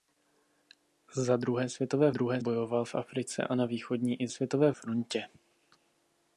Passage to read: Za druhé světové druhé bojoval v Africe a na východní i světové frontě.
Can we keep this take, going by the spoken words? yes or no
yes